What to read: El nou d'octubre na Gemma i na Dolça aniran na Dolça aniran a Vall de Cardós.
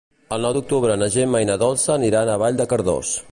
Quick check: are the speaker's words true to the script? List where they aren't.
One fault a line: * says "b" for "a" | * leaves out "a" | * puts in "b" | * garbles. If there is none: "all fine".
* leaves out "na Dolça aniran"